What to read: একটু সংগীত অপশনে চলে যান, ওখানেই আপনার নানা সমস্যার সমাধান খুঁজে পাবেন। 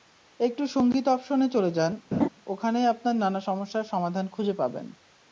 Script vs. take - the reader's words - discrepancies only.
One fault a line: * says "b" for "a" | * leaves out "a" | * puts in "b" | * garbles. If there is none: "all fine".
all fine